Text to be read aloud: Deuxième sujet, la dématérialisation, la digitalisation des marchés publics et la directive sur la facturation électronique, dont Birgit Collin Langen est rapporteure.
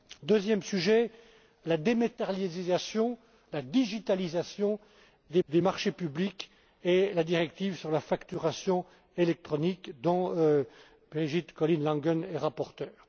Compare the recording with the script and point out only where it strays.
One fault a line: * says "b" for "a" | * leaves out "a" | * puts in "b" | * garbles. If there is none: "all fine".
* puts in "des"